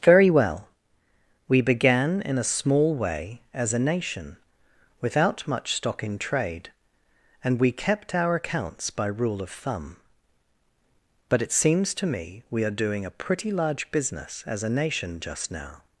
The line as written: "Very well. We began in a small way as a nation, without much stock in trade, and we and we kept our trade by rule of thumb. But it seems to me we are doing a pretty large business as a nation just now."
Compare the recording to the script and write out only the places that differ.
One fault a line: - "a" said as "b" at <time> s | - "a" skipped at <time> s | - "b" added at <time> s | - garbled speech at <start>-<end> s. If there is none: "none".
- "and we" skipped at 7.7 s
- "trade" said as "accounts" at 8.3 s